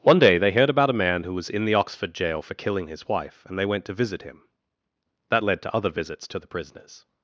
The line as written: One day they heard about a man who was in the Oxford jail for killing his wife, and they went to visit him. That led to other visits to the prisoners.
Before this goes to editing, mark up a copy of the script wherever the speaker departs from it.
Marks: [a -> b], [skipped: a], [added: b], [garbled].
One day they heard about a man who was in the Oxford jail for killing his wife, and they went to visit him. That led to other visits to the prisoners.